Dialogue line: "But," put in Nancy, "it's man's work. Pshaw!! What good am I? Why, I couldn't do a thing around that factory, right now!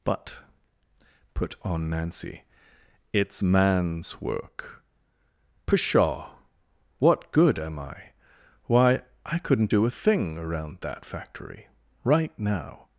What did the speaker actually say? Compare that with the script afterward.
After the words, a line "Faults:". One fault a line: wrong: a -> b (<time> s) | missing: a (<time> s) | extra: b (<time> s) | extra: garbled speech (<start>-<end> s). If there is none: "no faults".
"But," put on Nancy, "it's man's work. Pshaw!! What good am I? Why, I couldn't do a thing around that factory, right now!
Faults:
wrong: in -> on (1.6 s)